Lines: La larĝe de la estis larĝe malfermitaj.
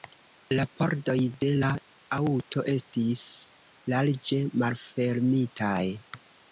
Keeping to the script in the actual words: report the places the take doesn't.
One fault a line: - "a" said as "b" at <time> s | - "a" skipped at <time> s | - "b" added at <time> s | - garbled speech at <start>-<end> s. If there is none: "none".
- "larĝe" said as "pordoj" at 0.8 s
- "aŭto" added at 2.2 s